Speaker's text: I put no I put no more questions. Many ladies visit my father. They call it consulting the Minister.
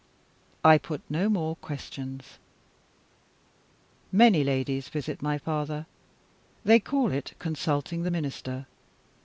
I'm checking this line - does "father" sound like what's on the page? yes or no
yes